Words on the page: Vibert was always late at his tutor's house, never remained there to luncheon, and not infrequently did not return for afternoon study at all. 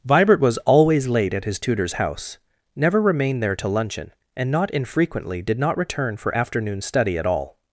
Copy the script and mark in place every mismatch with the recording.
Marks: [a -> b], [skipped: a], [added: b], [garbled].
Vibert was always late at his tutor's house, never remained there to luncheon, and not infrequently did not return for afternoon study at all.